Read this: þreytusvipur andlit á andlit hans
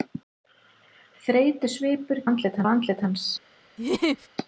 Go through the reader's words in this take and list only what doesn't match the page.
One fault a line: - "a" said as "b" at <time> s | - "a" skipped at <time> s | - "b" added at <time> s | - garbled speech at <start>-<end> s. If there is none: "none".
none